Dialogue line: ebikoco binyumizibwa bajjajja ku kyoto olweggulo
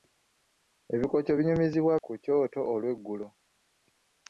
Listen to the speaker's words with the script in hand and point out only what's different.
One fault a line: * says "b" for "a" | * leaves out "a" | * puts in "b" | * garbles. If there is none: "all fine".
* leaves out "bajjajja"